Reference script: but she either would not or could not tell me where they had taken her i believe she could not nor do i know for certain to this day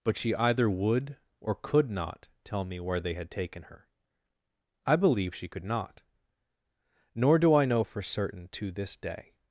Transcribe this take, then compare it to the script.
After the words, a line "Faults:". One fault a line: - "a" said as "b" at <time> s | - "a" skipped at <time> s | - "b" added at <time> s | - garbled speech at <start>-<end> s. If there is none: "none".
but she either would or could not tell me where they had taken her i believe she could not nor do i know for certain to this day
Faults:
- "not" skipped at 1.2 s